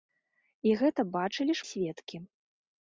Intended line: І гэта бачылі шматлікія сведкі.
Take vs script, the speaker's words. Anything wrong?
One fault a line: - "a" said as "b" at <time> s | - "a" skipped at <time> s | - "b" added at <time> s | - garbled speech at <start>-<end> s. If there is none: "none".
- "шматлікія" skipped at 1.6 s